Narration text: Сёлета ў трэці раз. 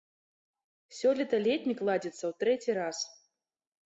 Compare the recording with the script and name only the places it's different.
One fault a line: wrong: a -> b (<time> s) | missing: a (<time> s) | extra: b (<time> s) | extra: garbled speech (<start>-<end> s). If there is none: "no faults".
extra: летнік ладзіцца (1.5 s)